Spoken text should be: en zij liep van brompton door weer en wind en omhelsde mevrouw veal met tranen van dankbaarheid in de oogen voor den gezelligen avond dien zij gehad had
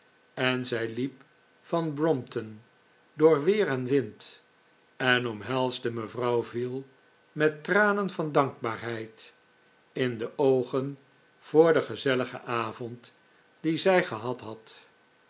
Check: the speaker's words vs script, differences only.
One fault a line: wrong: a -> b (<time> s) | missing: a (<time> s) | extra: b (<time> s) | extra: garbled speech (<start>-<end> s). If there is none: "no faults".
no faults